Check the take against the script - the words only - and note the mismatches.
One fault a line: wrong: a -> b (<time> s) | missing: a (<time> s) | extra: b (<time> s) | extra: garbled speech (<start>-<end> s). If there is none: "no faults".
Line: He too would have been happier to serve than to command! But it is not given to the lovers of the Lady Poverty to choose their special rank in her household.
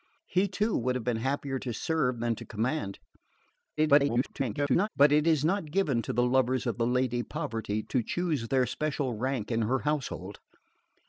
extra: garbled speech (3.8-4.9 s)